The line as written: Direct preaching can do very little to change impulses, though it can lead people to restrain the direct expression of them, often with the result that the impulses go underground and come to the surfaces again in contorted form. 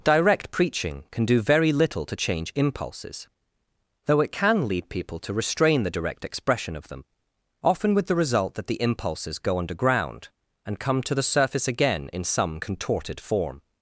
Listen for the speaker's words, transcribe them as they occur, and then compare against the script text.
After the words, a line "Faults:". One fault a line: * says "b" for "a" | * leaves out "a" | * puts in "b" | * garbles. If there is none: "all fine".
Direct preaching can do very little to change impulses, though it can lead people to restrain the direct expression of them, often with the result that the impulses go underground and come to the surface again in some contorted form.
Faults:
* says "surface" for "surfaces"
* puts in "some"